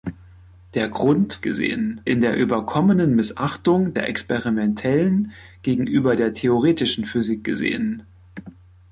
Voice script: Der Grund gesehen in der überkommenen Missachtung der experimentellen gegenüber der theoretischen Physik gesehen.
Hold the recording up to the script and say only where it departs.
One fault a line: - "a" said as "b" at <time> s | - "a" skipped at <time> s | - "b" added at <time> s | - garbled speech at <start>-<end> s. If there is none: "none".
none